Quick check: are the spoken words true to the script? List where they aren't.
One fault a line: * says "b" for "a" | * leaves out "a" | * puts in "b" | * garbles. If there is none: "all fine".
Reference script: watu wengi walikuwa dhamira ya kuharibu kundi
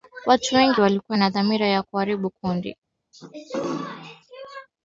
* puts in "na"